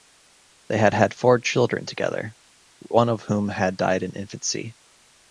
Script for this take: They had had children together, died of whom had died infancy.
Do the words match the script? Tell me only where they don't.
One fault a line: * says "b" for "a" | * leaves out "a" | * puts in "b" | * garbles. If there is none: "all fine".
* puts in "four"
* says "one" for "died"
* puts in "in"